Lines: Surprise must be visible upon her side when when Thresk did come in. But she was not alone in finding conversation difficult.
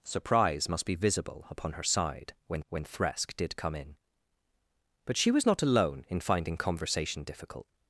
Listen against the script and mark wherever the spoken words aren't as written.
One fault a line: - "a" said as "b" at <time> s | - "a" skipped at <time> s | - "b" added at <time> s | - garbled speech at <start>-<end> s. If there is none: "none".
none